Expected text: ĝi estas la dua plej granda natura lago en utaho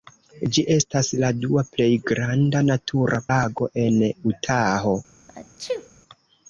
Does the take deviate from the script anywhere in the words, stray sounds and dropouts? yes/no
yes